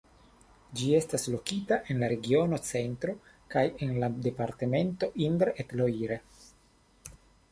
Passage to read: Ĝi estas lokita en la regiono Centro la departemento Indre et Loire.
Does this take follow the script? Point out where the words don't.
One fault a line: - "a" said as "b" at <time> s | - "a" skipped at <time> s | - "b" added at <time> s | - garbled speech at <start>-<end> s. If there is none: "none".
- "kaj en" added at 3.5 s